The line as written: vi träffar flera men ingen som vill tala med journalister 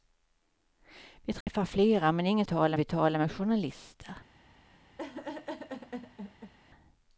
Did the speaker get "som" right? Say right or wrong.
wrong